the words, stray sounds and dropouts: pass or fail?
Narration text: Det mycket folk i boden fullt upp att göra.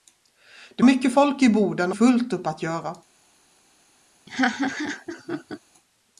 fail